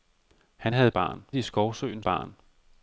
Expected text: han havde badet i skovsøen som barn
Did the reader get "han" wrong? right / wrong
right